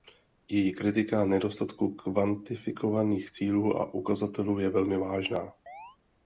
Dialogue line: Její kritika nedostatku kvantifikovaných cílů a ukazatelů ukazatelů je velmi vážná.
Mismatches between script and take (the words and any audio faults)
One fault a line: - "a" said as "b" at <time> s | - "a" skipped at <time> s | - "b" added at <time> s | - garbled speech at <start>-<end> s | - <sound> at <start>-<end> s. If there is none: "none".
- "ukazatelů" skipped at 4.6 s
- chirp at 5.7-6.0 s